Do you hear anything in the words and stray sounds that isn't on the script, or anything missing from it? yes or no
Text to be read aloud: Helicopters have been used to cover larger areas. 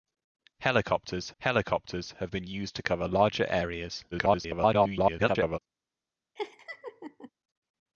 yes